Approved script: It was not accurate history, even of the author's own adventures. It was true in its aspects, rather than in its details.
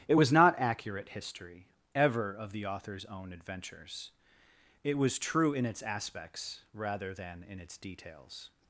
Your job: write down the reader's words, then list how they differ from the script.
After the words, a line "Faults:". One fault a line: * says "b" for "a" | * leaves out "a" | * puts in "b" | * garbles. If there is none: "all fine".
It was not accurate history, ever of the author's own adventures. It was true in its aspects, rather than in its details.
Faults:
* says "ever" for "even"